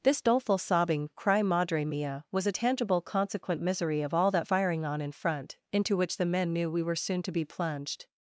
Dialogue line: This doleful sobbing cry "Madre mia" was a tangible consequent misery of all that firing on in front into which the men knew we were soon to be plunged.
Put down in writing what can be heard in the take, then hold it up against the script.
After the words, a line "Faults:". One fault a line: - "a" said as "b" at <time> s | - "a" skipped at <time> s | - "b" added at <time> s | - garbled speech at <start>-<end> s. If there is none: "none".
This doleful sobbing cry "Madre mia" was a tangible consequent misery of all that firing on in front into which the men knew we were soon to be plunged.
Faults:
none